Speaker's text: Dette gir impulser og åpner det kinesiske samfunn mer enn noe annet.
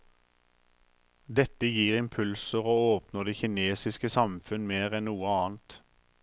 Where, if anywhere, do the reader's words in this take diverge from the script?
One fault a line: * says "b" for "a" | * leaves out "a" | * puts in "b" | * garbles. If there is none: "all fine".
all fine